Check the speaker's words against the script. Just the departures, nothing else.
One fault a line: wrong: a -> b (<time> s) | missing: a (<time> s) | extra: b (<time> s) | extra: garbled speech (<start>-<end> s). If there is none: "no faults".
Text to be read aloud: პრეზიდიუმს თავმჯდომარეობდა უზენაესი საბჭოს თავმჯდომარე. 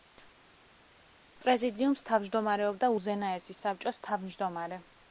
no faults